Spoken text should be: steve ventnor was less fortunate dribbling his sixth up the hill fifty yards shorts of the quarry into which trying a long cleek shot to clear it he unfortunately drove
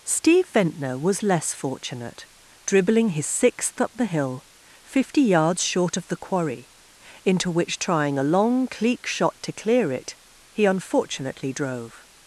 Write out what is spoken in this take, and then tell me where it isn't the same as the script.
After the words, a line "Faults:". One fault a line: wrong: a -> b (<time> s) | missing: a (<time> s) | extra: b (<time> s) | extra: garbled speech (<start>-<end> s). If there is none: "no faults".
steve ventnor was less fortunate dribbling his sixth up the hill fifty yards short of the quarry into which trying a long cleek shot to clear it he unfortunately drove
Faults:
wrong: shorts -> short (5.6 s)